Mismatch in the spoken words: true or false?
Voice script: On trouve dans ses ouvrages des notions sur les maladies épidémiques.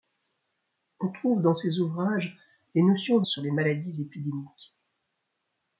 false